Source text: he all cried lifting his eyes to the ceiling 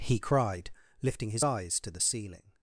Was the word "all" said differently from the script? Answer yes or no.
yes